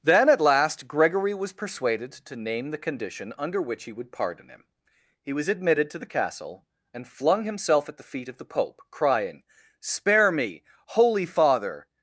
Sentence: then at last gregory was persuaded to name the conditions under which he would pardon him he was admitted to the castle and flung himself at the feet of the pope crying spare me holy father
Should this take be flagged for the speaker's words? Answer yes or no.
yes